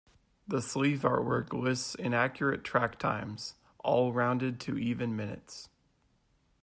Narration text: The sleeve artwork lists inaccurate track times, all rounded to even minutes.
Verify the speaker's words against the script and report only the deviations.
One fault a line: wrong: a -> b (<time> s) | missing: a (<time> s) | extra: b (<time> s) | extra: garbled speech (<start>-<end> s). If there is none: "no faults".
no faults